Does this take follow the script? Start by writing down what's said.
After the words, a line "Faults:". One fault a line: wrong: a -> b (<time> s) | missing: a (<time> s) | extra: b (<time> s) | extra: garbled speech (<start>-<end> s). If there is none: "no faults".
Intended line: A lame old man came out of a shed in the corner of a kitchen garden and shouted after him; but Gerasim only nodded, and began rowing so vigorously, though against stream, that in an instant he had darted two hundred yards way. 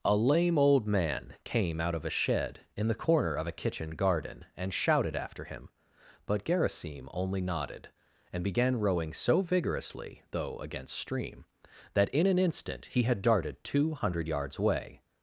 A lame old man came out of a shed in the corner of a kitchen garden and shouted after him; but Gerasim only nodded, and began rowing so vigorously, though against stream, that in an instant he had darted two hundred yards away.
Faults:
wrong: way -> away (14.6 s)